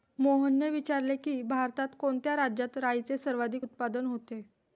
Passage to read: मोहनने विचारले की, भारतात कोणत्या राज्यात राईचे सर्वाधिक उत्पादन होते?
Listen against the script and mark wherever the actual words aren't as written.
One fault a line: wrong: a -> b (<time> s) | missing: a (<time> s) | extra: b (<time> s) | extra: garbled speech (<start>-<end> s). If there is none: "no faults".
no faults